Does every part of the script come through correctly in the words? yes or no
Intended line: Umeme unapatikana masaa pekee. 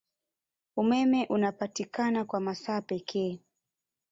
no